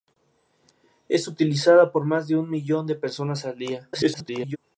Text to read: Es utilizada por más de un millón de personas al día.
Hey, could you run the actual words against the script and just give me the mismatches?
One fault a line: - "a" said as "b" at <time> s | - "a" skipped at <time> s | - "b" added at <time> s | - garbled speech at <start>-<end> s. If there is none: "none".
- garbled speech at 3.9-4.6 s